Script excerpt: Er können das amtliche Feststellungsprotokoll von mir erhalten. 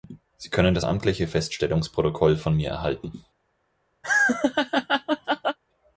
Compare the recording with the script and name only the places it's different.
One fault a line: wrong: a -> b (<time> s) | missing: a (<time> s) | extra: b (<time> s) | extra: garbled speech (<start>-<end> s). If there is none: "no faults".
wrong: Er -> Sie (0.3 s)